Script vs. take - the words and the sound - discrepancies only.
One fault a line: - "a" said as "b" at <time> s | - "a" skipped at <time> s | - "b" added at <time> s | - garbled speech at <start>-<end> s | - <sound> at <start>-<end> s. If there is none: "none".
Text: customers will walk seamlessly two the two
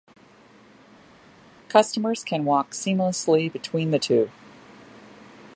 - "will" said as "can" at 2.2 s
- "two" said as "between" at 3.5 s